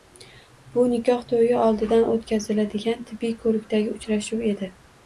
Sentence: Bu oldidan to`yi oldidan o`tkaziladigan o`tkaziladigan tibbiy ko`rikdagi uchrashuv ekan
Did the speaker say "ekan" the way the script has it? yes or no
no